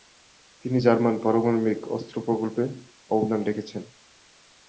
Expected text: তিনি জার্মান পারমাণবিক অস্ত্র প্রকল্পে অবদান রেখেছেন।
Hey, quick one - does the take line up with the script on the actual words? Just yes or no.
yes